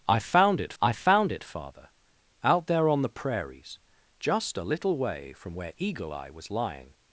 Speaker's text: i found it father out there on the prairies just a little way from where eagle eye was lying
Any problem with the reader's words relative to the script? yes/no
yes